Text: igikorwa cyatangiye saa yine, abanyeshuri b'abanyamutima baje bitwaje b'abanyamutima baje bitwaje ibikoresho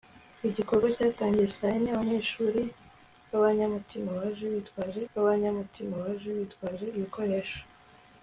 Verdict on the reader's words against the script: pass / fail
pass